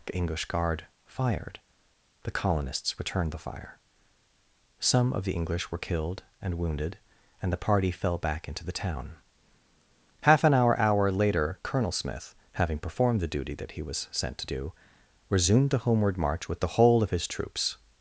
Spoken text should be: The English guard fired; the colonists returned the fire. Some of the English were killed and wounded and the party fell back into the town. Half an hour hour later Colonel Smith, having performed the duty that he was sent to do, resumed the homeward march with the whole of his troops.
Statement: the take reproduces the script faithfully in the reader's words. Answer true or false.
true